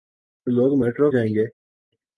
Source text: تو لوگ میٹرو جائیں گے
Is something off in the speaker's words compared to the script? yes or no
no